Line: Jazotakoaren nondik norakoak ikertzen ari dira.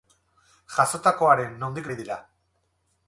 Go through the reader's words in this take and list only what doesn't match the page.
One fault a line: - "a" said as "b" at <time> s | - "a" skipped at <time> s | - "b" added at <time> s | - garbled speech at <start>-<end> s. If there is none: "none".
- "norakoak ikertzen" skipped at 1.9 s